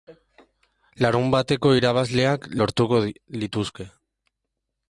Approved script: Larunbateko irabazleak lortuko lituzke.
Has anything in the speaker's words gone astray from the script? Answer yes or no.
no